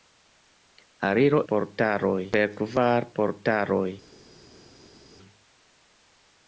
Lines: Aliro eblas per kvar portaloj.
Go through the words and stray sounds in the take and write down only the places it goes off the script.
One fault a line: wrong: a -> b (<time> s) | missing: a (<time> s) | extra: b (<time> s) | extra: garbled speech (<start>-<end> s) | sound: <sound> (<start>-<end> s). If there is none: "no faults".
wrong: eblas -> portaloj (1.5 s)